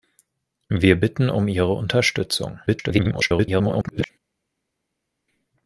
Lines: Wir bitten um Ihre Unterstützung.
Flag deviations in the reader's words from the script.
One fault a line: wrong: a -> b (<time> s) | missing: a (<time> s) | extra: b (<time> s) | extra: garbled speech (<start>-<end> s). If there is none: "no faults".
extra: garbled speech (2.7-4.1 s)